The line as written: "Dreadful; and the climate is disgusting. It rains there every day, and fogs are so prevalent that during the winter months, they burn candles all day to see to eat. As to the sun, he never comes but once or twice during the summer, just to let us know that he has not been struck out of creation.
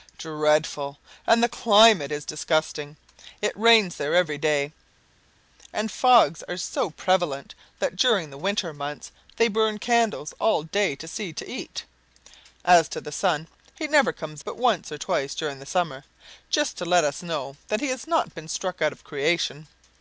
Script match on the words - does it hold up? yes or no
yes